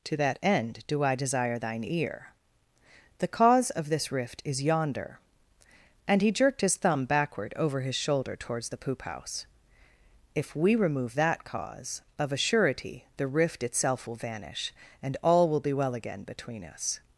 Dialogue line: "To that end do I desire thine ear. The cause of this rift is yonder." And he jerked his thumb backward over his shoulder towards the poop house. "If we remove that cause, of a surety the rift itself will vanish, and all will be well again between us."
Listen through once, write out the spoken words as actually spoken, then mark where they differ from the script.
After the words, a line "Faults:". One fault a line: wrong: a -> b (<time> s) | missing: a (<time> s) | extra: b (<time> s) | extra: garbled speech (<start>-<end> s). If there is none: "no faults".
"To that end do I desire thine ear. The cause of this rift is yonder." And he jerked his thumb backward over his shoulder towards the poop house. "If we remove that cause, of a surety the rift itself will vanish, and all will be well again between us."
Faults:
no faults